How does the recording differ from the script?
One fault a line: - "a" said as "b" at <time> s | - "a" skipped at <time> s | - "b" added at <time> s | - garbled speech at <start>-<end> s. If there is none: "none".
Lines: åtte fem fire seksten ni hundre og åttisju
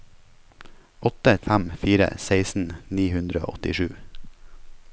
none